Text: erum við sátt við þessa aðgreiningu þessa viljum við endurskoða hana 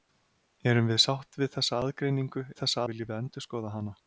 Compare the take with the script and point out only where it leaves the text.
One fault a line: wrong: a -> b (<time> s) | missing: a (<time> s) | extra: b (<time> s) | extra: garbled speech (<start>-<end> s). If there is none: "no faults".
no faults